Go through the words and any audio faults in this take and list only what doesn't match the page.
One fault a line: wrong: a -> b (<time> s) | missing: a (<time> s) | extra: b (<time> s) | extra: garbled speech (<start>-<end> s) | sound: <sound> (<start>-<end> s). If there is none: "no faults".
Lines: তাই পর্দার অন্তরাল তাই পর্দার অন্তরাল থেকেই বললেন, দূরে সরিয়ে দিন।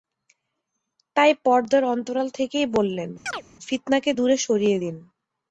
missing: তাই পর্দার অন্তরাল (2.3 s)
sound: chirp (3.3-3.4 s)
extra: ফিতনাকে (3.7 s)